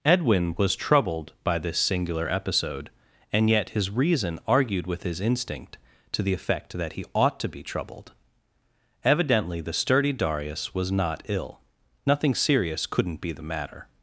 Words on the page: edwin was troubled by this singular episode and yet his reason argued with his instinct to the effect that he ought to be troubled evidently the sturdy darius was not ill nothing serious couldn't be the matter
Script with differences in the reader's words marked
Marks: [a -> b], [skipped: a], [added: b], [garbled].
edwin was troubled by this singular episode and yet his reason argued with his instinct to the effect that he ought to be troubled evidently the sturdy darius was not ill nothing serious couldn't be the matter